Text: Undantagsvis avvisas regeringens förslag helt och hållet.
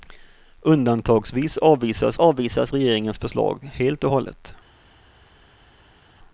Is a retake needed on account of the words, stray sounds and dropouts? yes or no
yes